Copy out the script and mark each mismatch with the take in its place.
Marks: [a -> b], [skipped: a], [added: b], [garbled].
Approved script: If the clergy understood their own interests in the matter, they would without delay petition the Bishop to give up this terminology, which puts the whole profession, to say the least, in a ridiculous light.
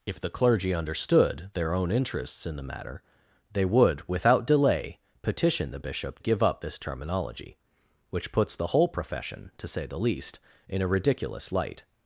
If the clergy understood their own interests in the matter, they would without delay petition the Bishop [skipped: to] give up this terminology, which puts the whole profession, to say the least, in a ridiculous light.